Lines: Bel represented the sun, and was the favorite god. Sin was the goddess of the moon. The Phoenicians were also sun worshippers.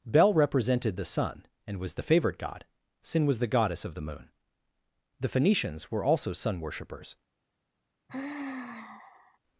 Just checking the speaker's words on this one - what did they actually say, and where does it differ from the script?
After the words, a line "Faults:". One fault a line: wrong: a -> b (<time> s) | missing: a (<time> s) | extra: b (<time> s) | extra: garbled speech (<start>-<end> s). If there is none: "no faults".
Bel represented the sun, and was the favorite god. Sin was the goddess of the moon. The Phoenicians were also sun worshippers.
Faults:
no faults